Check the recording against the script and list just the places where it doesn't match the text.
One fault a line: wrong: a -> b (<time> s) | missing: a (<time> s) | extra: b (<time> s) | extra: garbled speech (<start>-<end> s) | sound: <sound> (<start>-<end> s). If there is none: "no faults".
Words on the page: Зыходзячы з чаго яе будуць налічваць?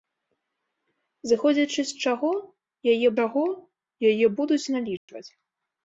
extra: чаго яе (3.2 s)
sound: dropout (5.0-5.1 s)